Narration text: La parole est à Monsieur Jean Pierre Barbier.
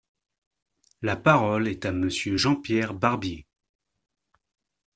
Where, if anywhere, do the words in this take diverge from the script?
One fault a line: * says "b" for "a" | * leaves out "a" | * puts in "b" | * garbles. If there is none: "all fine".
all fine